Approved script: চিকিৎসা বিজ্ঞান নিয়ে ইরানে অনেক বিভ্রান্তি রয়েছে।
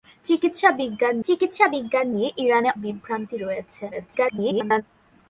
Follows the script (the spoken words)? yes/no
no